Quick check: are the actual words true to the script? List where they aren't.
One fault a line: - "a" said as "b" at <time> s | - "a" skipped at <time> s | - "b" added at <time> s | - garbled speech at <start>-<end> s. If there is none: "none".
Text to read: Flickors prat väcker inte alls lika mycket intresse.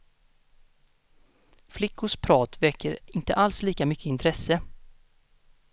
none